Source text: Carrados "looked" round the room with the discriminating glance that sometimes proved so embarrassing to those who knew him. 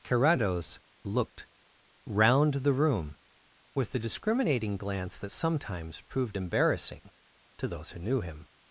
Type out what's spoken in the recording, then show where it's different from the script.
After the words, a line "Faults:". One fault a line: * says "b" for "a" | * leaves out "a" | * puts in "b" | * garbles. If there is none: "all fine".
Carrados "looked" round the room with the discriminating glance that sometimes proved embarrassing to those who knew him.
Faults:
* leaves out "so"